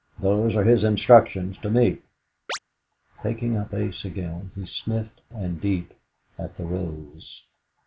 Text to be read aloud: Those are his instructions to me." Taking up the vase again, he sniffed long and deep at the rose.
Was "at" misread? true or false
false